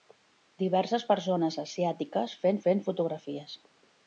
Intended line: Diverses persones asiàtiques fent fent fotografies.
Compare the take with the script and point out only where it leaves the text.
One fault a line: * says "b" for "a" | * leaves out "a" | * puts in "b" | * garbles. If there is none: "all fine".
all fine